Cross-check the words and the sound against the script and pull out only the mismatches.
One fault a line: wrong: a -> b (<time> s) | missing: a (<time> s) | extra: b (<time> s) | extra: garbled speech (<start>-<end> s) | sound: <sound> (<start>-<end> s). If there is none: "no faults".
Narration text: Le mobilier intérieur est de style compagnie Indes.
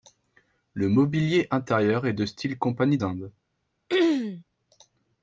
sound: throat clearing (3.9-4.4 s)